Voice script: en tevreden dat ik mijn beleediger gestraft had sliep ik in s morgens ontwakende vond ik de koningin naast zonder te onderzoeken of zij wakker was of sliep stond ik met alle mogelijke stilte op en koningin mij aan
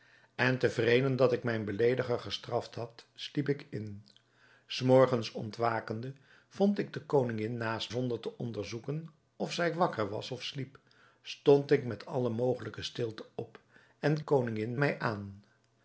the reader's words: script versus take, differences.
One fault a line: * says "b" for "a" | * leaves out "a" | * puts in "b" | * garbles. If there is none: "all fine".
all fine